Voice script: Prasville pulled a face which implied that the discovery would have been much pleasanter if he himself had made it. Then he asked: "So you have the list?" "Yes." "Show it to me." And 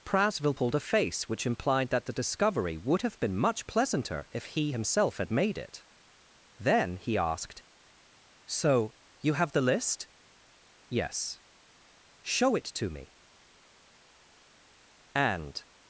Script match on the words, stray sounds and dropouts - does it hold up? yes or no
yes